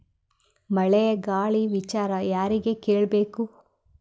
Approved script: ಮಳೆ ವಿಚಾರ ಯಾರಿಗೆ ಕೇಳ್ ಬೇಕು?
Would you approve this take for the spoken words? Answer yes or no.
no